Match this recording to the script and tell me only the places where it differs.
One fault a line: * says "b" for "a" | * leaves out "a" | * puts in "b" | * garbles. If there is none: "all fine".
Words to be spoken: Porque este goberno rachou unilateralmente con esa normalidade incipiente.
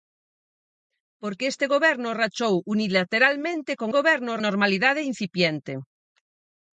* says "goberno" for "esa"